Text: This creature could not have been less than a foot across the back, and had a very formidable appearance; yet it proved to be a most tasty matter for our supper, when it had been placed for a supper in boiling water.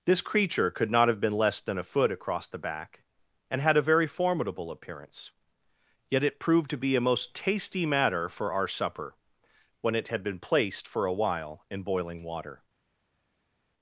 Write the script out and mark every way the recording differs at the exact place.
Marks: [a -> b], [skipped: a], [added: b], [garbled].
This creature could not have been less than a foot across the back, and had a very formidable appearance; yet it proved to be a most tasty matter for our supper, when it had been placed for a [supper -> while] in boiling water.